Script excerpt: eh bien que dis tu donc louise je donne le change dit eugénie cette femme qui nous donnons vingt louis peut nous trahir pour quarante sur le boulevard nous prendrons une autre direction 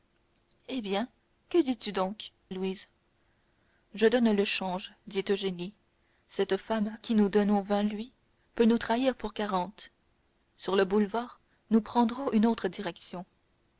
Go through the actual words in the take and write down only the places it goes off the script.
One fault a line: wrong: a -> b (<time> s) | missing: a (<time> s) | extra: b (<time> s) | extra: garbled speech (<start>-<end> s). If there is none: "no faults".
no faults